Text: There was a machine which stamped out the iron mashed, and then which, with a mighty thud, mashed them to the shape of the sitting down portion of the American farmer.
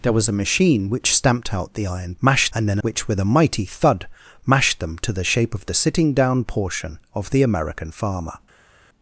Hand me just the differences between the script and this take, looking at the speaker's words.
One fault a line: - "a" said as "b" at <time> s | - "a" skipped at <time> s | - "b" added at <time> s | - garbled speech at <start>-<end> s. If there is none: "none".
none